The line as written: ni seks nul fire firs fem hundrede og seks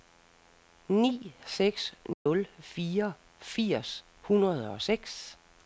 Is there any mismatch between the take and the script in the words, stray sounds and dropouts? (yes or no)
yes